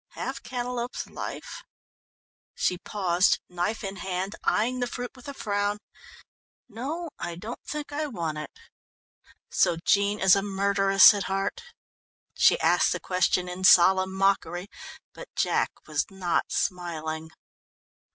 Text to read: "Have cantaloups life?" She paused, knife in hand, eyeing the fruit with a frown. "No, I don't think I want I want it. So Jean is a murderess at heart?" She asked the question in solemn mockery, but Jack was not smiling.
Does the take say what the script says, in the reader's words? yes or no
no